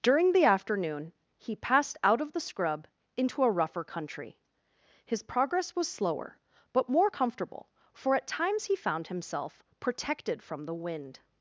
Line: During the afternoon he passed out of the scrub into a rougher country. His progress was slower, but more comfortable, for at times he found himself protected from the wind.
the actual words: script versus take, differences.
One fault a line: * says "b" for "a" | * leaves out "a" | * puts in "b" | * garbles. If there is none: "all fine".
all fine